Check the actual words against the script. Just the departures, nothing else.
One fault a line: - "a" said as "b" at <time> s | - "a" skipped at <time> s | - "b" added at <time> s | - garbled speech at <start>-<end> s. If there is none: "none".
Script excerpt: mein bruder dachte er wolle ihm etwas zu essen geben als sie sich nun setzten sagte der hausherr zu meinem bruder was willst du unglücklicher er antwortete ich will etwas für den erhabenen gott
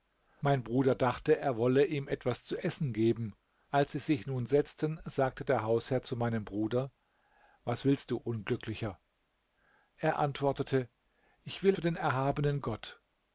- "etwas" skipped at 11.8 s